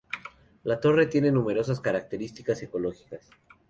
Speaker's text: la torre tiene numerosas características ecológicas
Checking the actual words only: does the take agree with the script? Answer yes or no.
yes